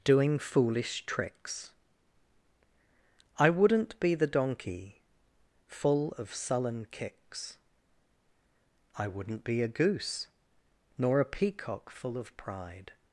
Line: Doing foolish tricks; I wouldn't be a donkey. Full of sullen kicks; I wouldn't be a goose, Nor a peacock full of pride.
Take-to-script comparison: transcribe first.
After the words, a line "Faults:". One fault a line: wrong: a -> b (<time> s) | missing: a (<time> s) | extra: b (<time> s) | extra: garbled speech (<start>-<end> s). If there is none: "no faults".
Doing foolish tricks; I wouldn't be the donkey. Full of sullen kicks; I wouldn't be a goose, Nor a peacock full of pride.
Faults:
wrong: a -> the (4.2 s)